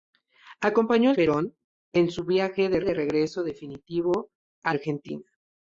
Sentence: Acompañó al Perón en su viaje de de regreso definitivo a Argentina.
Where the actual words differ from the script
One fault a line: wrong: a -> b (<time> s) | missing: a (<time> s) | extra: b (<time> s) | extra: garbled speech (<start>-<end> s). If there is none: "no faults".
no faults